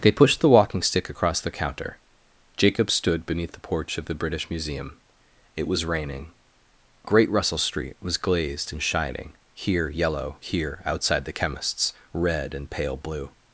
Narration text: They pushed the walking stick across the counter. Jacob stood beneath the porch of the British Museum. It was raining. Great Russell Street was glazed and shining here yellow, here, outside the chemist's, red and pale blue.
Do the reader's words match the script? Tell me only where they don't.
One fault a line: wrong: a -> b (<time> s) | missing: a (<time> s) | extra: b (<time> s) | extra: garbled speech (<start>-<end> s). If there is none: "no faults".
no faults